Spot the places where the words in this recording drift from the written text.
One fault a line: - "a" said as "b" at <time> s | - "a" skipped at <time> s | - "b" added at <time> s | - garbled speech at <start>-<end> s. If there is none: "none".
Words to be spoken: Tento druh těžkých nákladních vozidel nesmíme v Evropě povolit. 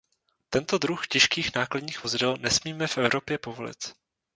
none